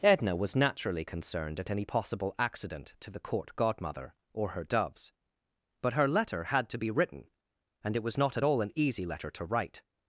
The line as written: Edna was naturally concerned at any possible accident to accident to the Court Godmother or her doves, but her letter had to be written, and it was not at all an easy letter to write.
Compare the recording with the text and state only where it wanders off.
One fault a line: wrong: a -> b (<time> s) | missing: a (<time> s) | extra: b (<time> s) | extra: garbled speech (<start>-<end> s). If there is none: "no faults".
missing: accident to (3.1 s)